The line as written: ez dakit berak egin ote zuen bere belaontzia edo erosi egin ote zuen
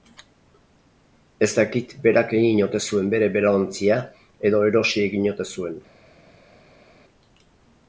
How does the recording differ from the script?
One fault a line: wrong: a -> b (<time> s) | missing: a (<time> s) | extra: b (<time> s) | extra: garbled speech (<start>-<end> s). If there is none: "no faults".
no faults